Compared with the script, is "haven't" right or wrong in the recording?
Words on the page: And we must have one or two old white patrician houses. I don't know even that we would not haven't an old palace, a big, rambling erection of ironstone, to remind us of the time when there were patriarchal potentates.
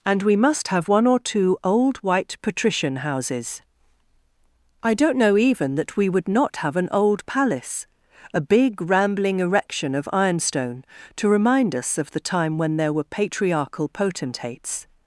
wrong